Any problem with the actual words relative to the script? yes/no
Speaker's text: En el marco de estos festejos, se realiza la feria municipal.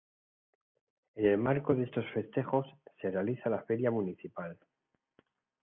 no